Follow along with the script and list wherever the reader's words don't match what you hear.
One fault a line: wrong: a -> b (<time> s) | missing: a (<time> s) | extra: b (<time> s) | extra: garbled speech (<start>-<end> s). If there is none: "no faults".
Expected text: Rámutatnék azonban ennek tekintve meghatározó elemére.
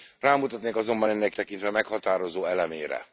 no faults